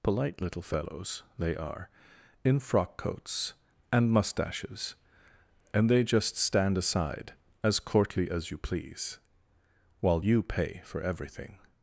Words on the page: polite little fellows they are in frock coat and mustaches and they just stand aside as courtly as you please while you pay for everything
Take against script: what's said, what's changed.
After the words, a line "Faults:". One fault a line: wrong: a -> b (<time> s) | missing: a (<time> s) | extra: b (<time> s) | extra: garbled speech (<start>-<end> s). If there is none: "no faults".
polite little fellows they are in frock coats and mustaches and they just stand aside as courtly as you please while you pay for everything
Faults:
wrong: coat -> coats (3.0 s)